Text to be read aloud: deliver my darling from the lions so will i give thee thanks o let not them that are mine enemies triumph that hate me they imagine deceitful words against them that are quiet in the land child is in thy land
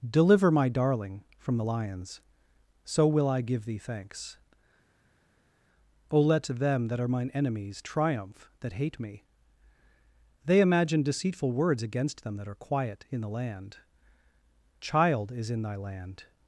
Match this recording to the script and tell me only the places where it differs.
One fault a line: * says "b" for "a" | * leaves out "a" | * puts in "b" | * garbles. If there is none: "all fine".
* leaves out "not"